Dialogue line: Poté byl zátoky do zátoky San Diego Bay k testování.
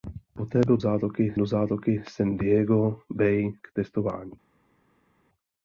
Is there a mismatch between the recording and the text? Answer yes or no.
no